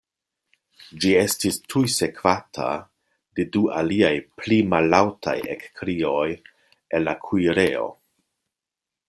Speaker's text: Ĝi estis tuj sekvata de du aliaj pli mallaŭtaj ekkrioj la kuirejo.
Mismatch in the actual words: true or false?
true